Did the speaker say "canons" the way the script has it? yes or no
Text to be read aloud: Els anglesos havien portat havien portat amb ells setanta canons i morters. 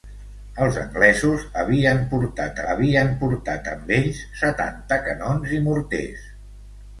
yes